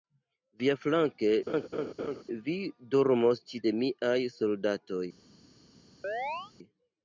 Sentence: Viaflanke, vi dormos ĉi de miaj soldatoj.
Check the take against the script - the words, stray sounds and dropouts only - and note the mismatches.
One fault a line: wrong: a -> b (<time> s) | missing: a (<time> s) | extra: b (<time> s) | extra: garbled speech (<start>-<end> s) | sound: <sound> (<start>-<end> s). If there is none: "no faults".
sound: laugh (1.5-2.2 s)
sound: chirp (6.0-6.5 s)